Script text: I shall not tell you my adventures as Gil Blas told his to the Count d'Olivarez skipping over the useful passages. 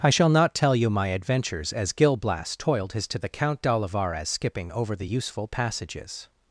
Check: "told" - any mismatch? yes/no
yes